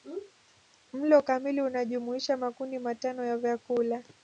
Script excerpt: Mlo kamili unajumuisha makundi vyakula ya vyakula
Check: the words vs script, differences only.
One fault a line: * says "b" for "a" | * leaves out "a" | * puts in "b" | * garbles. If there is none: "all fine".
* says "matano" for "vyakula"